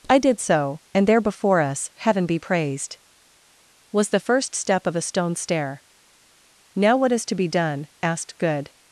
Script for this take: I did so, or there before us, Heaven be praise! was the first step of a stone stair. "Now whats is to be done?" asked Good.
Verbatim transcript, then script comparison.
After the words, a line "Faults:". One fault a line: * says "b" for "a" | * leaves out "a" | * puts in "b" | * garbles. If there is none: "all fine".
I did so, and there before us, Heaven be praised! was the first step of a stone stair. "Now what is to be done?" asked Good.
Faults:
* says "and" for "or"
* says "praised" for "praise"
* says "what" for "whats"